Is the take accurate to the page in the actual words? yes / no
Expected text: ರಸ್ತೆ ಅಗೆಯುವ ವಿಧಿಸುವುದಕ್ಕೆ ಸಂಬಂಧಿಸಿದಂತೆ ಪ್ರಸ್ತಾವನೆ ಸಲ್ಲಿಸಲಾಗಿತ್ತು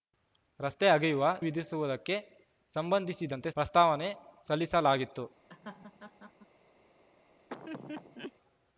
yes